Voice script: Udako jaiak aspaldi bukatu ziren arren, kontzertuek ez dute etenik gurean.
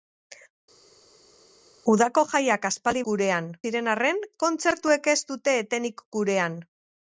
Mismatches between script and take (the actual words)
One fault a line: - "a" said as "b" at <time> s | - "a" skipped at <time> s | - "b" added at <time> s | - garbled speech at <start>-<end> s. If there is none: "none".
- "bukatu" said as "gurean" at 3.1 s